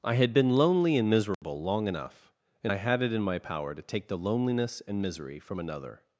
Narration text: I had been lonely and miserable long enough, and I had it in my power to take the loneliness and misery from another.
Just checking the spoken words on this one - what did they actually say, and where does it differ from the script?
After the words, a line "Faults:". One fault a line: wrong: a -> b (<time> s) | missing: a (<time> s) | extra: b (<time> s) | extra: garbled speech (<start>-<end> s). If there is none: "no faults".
I had been lonely and miserable long enough, and I had it in my power to take the loneliness and misery from another.
Faults:
no faults